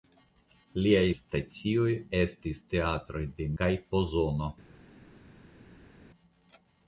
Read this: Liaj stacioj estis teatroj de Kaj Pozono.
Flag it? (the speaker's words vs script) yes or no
no